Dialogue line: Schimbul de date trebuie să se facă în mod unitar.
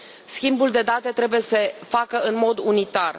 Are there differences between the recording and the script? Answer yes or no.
yes